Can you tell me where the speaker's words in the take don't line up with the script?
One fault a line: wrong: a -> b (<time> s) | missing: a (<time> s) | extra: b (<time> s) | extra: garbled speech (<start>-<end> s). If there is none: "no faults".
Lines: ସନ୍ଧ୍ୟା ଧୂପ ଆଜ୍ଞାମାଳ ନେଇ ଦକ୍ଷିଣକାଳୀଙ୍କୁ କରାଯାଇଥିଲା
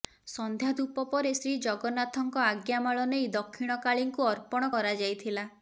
extra: ପରେ ଶ୍ରୀଜଗନ୍ନାଥଙ୍କ (1.1 s)
extra: ଅର୍ପଣ (4.3 s)